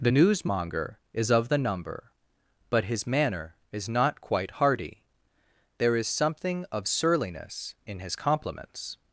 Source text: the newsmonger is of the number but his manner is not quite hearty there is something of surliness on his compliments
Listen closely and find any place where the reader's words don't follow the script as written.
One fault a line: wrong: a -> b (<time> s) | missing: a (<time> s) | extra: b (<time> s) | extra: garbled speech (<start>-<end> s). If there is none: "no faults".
wrong: on -> in (7.8 s)